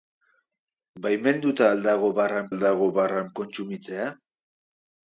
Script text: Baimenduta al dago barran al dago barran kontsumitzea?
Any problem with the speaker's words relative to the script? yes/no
no